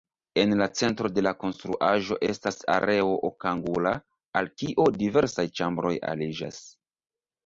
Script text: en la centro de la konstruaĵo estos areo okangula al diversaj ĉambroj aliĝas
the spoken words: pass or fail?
fail